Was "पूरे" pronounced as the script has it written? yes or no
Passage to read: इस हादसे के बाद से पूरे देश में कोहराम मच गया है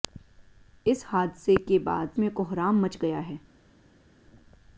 no